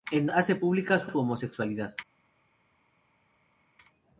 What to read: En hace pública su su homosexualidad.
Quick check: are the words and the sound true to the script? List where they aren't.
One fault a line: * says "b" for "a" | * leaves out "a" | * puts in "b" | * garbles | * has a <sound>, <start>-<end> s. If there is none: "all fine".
all fine